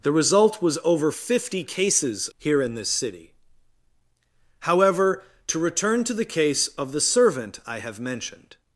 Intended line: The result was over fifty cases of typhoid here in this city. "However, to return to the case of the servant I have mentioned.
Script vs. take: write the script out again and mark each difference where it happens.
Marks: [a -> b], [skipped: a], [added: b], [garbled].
The result was over fifty cases [skipped: of typhoid] here in this city. "However, to return to the case of the servant I have mentioned.